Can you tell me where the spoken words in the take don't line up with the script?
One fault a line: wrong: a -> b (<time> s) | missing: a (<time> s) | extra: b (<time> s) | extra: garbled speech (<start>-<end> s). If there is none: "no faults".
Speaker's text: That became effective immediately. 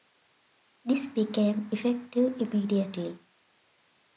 wrong: That -> This (0.8 s)